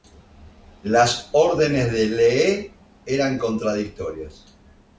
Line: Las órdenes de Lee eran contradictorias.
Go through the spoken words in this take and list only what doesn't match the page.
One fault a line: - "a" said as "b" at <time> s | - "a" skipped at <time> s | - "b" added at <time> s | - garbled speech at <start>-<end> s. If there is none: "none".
none